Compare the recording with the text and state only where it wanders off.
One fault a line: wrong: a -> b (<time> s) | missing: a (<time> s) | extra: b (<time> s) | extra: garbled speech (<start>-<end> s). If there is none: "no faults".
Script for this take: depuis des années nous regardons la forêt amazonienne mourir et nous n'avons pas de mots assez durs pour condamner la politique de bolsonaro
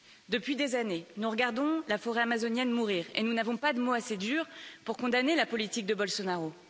no faults